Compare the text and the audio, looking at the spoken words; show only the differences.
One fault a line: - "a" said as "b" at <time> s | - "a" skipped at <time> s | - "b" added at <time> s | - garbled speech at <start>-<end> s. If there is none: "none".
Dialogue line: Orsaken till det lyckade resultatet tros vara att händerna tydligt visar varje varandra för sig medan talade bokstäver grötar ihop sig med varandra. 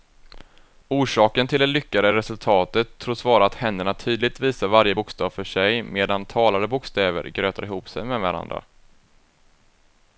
- "varandra" said as "bokstav" at 4.9 s